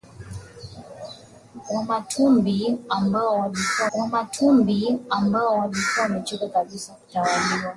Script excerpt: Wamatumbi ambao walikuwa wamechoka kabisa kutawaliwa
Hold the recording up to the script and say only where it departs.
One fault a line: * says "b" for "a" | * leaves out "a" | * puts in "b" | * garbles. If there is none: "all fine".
* puts in "wamatumbi ambao walikuwa"